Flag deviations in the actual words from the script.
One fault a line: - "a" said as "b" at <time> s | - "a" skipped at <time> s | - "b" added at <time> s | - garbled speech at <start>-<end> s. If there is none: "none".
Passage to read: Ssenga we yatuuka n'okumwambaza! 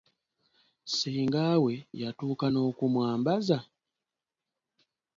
none